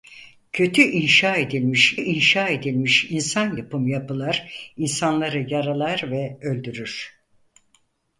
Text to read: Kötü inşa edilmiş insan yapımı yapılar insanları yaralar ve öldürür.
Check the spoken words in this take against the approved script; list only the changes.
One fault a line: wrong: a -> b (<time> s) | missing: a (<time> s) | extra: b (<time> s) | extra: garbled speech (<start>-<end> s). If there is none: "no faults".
extra: inşa edilmiş (1.9 s)